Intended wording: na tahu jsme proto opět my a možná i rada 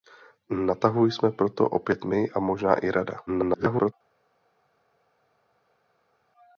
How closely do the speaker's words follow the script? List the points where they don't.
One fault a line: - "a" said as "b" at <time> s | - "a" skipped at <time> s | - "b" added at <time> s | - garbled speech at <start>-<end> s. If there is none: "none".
- garbled speech at 3.3-3.9 s